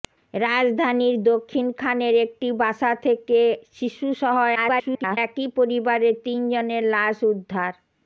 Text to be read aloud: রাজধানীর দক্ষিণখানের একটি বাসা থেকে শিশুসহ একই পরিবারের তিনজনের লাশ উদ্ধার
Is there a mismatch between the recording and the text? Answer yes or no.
yes